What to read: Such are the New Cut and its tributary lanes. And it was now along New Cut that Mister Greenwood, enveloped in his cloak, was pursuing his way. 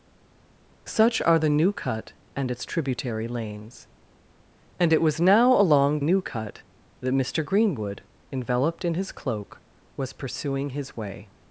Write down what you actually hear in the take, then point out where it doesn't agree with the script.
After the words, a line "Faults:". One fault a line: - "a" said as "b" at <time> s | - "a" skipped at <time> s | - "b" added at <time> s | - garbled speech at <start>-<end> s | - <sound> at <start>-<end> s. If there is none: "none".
Such are the New Cut and its tributary lanes. And it was now along New Cut that Mister Greenwood, enveloped in his cloak, was pursuing his way.
Faults:
none